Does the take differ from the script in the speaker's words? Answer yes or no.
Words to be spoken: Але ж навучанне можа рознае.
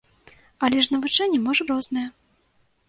no